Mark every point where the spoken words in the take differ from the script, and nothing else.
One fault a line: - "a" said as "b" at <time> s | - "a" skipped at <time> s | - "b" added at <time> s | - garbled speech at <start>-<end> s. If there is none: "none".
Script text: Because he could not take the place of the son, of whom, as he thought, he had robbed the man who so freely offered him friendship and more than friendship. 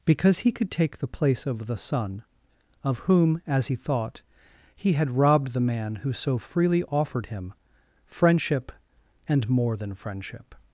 - "not" skipped at 0.7 s